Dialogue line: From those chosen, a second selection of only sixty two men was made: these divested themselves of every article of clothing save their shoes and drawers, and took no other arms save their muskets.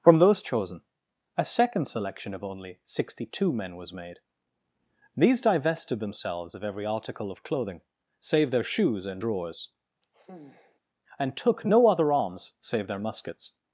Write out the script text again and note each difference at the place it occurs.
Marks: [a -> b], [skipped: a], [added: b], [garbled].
From those chosen, a second selection of only sixty two men was made: these divested themselves of every article of clothing save their shoes and drawers, and took no other arms save their muskets.